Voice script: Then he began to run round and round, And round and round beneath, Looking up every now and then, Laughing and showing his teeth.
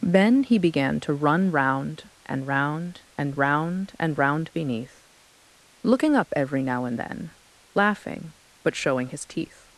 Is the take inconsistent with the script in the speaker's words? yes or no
yes